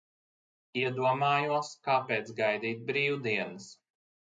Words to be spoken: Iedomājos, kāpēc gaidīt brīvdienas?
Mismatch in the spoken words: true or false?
false